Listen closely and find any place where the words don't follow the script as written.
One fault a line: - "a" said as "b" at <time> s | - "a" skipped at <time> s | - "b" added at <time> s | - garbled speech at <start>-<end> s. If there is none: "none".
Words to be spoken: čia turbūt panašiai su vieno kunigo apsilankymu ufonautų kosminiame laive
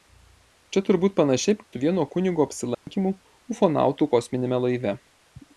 none